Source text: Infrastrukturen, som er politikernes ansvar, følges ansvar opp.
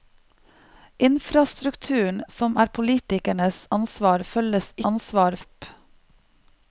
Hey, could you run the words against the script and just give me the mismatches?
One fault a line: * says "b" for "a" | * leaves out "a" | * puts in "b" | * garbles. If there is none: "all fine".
all fine